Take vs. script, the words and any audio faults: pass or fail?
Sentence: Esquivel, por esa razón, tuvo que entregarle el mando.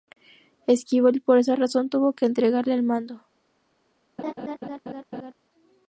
fail